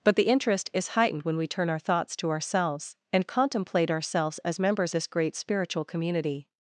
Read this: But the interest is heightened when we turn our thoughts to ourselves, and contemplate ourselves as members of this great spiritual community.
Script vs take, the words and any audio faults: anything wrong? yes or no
yes